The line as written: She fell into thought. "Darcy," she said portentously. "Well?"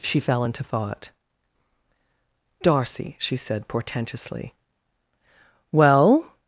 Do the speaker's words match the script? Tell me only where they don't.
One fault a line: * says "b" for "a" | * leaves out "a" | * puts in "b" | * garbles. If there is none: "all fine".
all fine